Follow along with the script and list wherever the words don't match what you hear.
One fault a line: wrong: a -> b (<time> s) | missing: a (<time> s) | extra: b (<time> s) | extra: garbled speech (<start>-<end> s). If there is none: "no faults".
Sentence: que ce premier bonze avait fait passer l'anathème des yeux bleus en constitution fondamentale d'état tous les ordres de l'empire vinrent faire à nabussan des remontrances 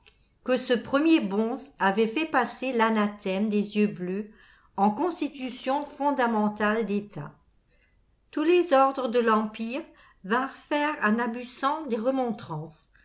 no faults